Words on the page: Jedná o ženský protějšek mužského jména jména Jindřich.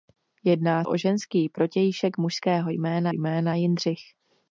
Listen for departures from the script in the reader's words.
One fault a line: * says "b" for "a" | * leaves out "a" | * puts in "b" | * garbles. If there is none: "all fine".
all fine